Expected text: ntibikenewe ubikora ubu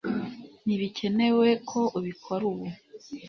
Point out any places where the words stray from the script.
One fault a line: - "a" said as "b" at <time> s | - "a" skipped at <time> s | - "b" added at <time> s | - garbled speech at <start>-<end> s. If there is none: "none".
- "ko" added at 1.7 s